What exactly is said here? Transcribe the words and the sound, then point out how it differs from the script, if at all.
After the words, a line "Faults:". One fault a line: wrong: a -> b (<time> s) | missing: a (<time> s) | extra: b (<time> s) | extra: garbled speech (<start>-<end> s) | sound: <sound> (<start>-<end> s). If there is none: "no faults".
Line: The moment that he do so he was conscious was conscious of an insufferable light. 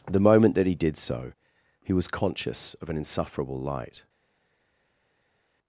The moment that he did so he was conscious of an insufferable light.
Faults:
wrong: do -> did (0.8 s)
missing: was conscious (2.7 s)